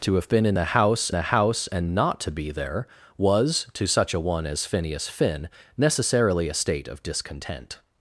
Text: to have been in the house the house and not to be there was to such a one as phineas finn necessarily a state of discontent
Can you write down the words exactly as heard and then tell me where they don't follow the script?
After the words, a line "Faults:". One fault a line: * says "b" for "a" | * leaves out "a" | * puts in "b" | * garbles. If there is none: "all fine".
to have been in the house the house and not to be there was to such a one as phineas finn necessarily a state of discontent
Faults:
all fine